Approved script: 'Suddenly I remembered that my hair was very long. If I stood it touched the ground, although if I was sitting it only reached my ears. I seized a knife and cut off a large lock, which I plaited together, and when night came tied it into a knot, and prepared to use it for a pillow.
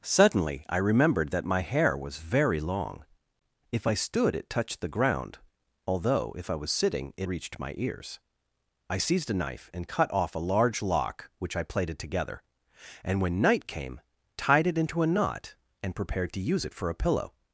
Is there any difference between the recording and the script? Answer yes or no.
yes